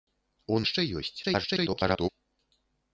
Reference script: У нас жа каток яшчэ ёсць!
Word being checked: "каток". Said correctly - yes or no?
no